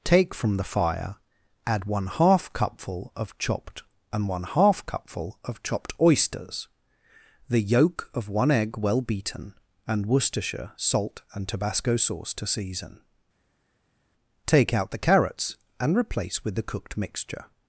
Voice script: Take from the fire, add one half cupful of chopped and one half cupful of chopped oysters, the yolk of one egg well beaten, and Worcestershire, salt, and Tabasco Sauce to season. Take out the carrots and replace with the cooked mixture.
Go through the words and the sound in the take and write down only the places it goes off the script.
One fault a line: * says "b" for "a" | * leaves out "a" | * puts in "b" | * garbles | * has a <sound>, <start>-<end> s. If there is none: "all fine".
all fine